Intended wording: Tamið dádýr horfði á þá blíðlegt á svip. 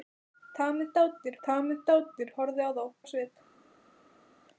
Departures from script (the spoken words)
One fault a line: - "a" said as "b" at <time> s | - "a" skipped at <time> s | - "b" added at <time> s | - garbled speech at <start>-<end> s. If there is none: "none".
- "tamið dádýr" added at 1.5 s
- "blíðlegt" skipped at 2.8 s